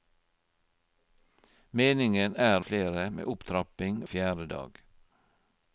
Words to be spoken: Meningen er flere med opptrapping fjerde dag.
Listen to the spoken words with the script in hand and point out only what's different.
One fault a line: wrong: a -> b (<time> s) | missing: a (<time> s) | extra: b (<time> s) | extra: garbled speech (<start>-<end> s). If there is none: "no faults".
no faults